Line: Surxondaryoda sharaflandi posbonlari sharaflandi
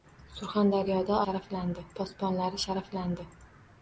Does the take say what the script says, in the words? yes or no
yes